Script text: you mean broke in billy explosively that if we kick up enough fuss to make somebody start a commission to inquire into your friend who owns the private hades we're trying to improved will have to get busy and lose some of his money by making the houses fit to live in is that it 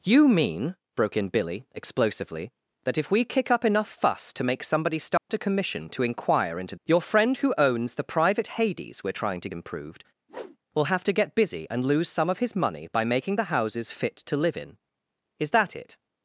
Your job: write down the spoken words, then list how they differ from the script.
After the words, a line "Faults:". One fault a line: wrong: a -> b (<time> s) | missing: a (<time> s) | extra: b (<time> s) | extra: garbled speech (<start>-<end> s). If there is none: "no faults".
you mean broke in billy explosively that if we kick up enough fuss to make somebody start a commission to inquire into your friend who owns the private hades we're trying to improved will have to get busy and lose some of his money by making the houses fit to live in is that it
Faults:
no faults